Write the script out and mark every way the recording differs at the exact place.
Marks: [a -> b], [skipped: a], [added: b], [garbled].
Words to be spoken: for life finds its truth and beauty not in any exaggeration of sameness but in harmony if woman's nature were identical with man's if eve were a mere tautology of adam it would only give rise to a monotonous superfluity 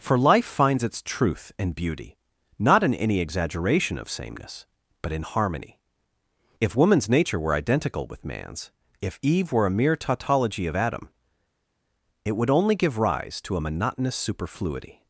for life finds its truth and beauty not in any exaggeration of sameness but in harmony if woman's nature were identical with man's if eve were a mere tautology of adam it would only give rise to a monotonous superfluity